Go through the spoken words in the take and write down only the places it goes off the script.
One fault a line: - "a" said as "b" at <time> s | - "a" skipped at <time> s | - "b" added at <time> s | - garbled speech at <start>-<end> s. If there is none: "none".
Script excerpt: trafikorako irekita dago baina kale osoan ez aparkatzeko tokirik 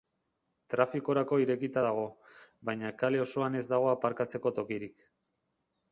- "dago" added at 3.7 s